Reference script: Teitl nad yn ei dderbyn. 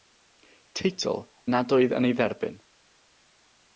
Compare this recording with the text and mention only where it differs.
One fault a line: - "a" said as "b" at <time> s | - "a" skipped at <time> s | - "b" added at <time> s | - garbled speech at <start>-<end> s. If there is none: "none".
- "oedd" added at 1.8 s